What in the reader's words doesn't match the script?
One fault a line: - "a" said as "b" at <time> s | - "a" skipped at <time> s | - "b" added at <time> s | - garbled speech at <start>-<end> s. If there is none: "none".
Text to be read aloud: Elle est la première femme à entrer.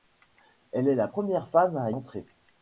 none